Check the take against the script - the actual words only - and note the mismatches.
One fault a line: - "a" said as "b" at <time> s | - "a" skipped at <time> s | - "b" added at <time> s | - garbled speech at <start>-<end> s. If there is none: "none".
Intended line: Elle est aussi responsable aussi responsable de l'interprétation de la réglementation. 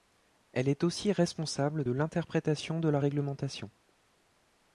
- "aussi responsable" skipped at 1.9 s